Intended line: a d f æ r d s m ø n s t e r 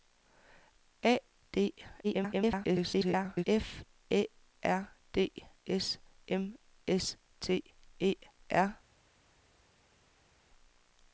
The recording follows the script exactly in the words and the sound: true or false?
false